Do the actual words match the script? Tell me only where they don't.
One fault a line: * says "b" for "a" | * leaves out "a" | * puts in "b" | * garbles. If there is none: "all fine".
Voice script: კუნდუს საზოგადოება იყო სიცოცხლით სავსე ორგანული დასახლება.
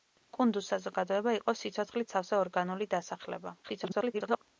* garbles